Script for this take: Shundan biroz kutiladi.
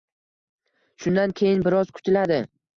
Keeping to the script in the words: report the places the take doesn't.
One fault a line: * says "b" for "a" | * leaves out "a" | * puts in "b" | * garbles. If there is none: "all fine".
* puts in "keyin"